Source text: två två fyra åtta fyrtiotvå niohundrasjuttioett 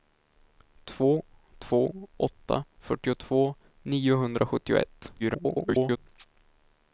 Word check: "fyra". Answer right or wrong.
wrong